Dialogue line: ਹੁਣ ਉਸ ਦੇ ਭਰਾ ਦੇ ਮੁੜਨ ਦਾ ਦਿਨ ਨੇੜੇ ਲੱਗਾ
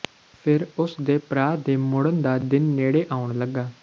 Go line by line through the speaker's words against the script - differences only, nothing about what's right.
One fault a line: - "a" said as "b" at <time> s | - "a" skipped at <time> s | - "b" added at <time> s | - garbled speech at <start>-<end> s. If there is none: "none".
- "ਹੁਣ" said as "ਫਿਰ" at 0.4 s
- "ਆਉਣ" added at 3.1 s